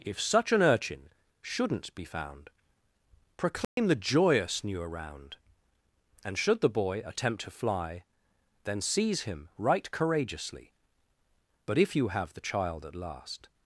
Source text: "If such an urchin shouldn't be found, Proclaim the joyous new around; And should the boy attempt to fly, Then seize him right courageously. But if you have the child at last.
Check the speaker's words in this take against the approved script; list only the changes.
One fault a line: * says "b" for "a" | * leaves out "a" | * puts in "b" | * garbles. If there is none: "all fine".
all fine